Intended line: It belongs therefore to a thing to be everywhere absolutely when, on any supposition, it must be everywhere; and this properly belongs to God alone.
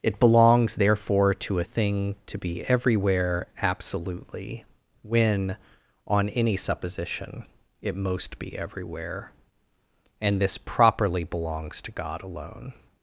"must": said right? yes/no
no